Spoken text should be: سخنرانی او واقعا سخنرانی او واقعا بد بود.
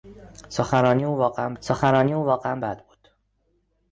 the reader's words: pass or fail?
pass